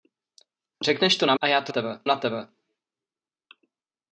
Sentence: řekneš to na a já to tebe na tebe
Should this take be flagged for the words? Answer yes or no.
no